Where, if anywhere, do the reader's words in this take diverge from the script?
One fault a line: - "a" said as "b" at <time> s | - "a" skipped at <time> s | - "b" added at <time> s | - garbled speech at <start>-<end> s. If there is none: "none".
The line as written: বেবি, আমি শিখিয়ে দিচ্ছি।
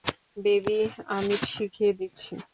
none